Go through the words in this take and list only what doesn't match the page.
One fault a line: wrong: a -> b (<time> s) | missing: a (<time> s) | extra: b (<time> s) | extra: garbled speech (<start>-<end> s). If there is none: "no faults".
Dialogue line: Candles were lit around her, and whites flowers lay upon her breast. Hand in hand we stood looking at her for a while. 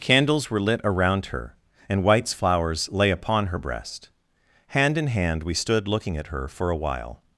no faults